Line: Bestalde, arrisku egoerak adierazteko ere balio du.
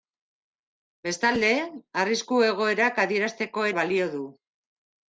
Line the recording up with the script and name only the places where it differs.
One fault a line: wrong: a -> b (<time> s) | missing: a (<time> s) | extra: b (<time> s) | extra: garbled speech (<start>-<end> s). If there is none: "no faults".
missing: ere (3.7 s)